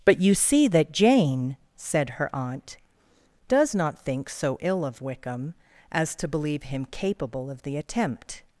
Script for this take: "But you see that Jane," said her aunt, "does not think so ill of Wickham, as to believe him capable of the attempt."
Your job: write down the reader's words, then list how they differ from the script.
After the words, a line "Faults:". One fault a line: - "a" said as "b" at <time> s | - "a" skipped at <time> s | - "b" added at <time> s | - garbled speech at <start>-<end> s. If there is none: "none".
"But you see that Jane," said her aunt, "does not think so ill of Wickham, as to believe him capable of the attempt."
Faults:
none